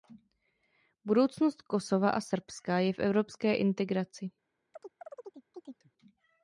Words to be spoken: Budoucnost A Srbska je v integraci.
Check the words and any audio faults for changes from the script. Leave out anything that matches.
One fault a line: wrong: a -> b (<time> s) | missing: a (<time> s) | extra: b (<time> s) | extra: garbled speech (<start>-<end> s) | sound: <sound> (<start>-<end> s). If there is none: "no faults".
extra: Kosova (1.6 s)
extra: evropské (3.0 s)
sound: chirp (4.7-5.9 s)